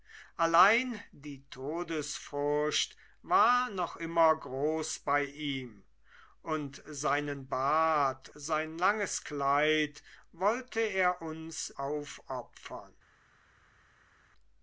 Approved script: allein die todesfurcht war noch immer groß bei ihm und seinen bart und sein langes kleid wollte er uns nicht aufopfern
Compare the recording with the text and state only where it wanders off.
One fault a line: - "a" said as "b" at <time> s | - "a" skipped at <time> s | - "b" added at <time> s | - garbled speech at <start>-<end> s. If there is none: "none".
- "und" skipped at 8.3 s
- "nicht" skipped at 11.7 s